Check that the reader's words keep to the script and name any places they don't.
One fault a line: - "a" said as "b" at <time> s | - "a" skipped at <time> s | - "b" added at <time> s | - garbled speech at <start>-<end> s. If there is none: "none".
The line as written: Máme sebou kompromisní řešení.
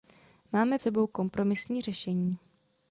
none